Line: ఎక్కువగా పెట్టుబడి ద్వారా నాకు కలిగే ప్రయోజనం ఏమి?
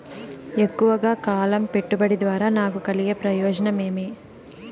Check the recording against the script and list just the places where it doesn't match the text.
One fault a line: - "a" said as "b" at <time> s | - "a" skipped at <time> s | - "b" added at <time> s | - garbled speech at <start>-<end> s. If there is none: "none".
- "కాలం" added at 1.2 s